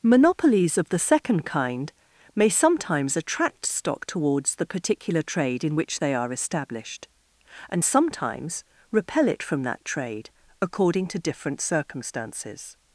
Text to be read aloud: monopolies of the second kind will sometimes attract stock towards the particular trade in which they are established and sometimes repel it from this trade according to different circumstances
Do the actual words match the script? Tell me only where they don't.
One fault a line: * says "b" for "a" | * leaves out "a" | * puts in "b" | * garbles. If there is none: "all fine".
* says "may" for "will"
* says "that" for "this"